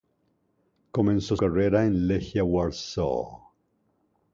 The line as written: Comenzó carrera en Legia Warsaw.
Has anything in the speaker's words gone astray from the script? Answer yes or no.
no